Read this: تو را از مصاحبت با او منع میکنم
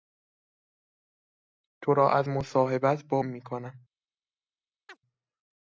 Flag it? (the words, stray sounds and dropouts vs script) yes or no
yes